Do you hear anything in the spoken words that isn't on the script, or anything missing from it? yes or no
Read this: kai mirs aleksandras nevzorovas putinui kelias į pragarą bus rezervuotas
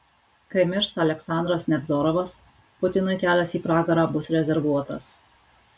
no